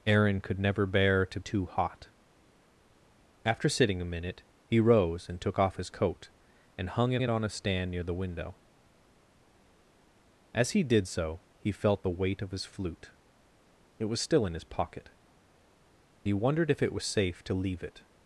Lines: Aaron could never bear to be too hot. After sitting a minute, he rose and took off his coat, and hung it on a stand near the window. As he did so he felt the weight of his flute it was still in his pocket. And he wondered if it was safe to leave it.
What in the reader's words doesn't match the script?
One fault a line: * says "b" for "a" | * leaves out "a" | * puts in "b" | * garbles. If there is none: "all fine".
* leaves out "be"
* puts in "it"
* leaves out "And"